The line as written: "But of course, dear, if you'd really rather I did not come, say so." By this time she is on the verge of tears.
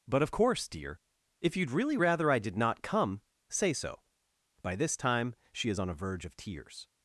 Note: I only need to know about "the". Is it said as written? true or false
false